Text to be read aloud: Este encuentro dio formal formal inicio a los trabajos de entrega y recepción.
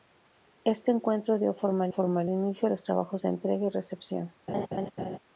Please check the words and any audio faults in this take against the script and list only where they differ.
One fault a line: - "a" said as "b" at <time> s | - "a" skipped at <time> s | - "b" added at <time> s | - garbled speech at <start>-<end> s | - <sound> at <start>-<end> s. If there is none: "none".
- laugh at 4.5-5.2 s